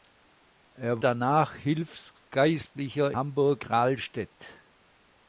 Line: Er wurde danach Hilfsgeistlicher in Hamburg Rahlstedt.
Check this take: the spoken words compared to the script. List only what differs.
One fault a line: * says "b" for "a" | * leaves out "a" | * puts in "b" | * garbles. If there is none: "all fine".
* leaves out "wurde"
* leaves out "in"